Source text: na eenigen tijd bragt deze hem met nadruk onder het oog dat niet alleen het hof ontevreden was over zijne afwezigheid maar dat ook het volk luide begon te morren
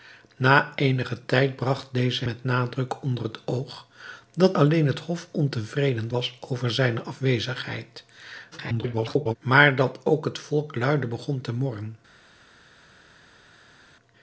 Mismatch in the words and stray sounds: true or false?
true